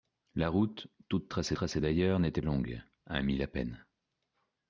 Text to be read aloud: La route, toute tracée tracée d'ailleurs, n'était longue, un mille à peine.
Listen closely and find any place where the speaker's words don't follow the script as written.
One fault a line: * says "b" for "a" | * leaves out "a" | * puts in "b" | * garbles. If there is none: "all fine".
all fine